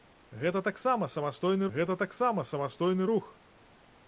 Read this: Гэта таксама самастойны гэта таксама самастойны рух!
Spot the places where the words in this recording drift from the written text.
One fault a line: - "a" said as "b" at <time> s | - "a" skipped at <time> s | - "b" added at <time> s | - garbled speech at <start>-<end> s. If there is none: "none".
none